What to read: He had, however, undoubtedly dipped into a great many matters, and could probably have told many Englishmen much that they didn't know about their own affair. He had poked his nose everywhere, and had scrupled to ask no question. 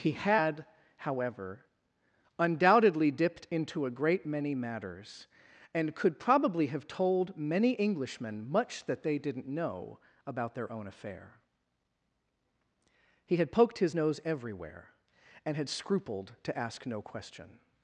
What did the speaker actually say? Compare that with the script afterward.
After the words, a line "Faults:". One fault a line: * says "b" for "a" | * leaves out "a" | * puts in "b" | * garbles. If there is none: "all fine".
He had, however, undoubtedly dipped into a great many matters, and could probably have told many Englishmen much that they didn't know about their own affair. He had poked his nose everywhere, and had scrupled to ask no question.
Faults:
all fine